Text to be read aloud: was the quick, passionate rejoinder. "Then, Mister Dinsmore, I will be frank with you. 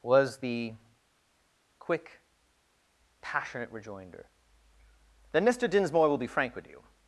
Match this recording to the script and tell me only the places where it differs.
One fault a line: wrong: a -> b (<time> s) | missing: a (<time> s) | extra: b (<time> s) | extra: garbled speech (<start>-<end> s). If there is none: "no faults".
missing: I (6.1 s)